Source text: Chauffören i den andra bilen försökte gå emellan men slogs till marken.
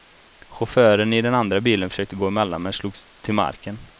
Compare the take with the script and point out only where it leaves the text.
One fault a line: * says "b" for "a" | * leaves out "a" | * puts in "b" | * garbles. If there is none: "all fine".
all fine